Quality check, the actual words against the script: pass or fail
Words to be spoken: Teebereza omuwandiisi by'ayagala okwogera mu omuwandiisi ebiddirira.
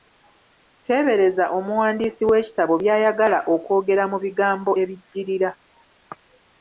fail